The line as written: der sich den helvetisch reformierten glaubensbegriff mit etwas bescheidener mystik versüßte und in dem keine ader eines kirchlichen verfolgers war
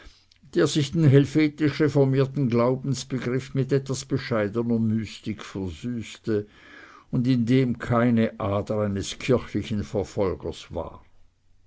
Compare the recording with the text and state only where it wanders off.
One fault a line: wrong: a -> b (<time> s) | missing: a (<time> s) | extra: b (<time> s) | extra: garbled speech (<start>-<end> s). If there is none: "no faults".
no faults